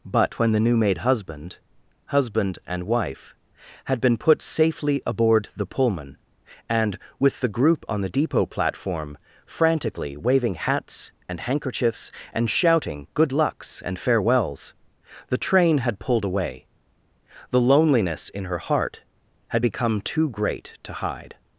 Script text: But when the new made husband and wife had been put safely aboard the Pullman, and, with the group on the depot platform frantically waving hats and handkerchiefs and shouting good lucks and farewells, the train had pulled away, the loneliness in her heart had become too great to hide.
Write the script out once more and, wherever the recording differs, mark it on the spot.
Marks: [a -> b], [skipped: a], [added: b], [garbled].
But when the new made husband [added: husband] and wife had been put safely aboard the Pullman, and, with the group on the depot platform frantically waving hats and handkerchiefs and shouting good lucks and farewells, the train had pulled away, the loneliness in her heart had become too great to hide.